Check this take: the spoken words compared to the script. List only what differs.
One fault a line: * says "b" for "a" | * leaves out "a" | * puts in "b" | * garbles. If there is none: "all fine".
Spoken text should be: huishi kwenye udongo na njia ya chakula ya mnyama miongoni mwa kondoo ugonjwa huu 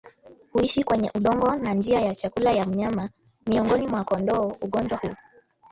all fine